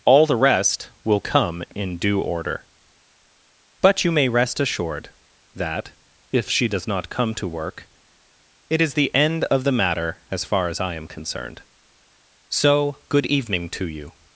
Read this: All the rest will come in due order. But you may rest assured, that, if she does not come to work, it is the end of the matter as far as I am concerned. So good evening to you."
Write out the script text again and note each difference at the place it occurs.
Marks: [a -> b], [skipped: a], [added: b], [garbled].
All the rest will come in due order. But you may rest assured, that, if she does not come to work, it is the end of the matter as far as I am concerned. So good evening to you."